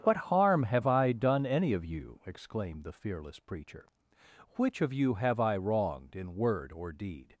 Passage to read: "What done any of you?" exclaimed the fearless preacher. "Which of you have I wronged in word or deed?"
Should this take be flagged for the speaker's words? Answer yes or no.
yes